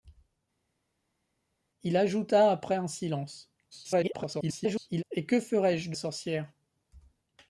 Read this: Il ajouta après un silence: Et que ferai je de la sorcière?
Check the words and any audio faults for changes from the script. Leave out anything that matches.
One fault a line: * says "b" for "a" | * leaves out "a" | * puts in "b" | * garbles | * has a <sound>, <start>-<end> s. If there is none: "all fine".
* garbles
* leaves out "la"